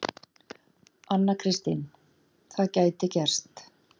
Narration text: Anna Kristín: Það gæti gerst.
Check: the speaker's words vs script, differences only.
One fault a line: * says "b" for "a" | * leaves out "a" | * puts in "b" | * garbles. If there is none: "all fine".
all fine